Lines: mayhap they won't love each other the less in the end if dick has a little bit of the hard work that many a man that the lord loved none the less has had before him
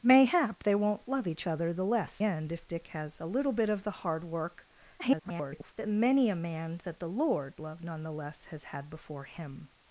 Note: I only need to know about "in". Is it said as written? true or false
false